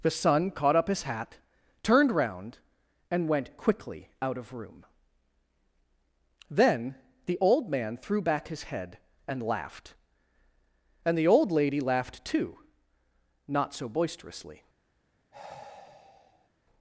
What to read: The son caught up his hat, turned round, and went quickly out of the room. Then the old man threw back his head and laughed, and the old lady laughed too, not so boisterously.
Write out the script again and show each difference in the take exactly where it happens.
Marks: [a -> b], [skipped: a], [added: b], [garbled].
The son caught up his hat, turned round, and went quickly out of [skipped: the] room. Then the old man threw back his head and laughed, and the old lady laughed too, not so boisterously.